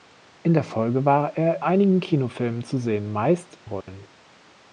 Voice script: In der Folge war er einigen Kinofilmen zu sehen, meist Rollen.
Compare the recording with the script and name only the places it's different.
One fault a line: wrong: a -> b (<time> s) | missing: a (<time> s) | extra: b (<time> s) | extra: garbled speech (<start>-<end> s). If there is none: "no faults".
no faults